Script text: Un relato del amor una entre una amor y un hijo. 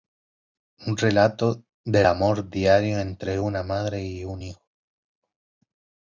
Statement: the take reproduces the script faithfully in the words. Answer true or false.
false